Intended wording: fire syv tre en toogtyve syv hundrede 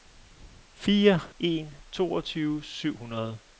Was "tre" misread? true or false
true